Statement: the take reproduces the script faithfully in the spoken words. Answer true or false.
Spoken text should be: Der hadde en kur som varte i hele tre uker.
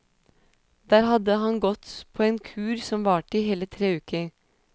false